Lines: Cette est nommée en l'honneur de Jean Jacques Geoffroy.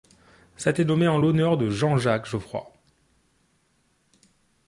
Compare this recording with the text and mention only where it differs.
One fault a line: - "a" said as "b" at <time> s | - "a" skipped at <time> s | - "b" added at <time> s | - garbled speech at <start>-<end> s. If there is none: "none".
none